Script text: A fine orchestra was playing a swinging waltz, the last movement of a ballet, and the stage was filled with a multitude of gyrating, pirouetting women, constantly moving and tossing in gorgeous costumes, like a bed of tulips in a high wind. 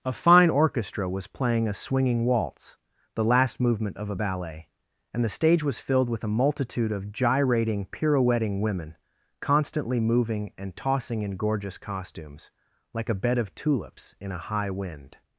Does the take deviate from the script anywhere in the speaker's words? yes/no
no